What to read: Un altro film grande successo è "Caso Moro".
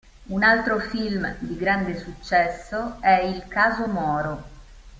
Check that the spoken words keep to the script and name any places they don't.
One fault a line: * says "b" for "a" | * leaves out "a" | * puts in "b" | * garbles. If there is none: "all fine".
* puts in "di"
* puts in "Il"